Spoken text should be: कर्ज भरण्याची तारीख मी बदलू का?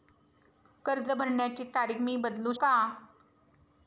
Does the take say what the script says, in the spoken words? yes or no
yes